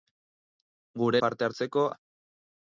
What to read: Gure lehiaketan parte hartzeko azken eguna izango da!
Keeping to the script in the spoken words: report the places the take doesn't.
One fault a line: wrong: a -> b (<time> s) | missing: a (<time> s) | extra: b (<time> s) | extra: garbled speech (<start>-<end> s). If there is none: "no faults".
missing: lehiaketan (1.2 s)
missing: azken eguna izango (1.9 s)